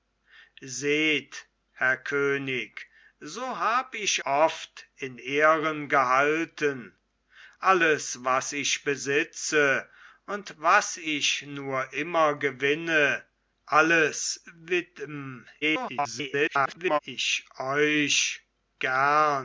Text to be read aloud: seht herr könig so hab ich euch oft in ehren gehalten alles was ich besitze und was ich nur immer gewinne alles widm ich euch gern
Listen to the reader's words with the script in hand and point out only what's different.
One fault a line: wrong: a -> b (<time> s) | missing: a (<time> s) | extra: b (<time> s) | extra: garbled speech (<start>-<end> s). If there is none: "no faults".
missing: euch (4.2 s)
extra: garbled speech (15.6-17.0 s)